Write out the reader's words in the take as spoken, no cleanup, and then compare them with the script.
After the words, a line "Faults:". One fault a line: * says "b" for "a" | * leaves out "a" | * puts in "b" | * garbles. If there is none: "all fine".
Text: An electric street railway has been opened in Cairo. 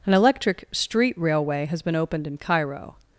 An electric street railway has been opened in Cairo.
Faults:
all fine